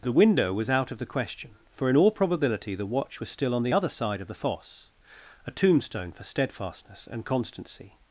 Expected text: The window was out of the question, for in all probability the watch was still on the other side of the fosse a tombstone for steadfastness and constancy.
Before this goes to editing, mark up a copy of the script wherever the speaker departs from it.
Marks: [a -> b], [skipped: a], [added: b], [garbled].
The window was out of the question, for in all probability the watch was still on the other side of the fosse a tombstone for steadfastness and constancy.